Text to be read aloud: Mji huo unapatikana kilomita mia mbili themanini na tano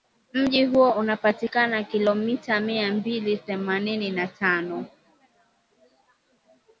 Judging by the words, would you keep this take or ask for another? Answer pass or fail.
pass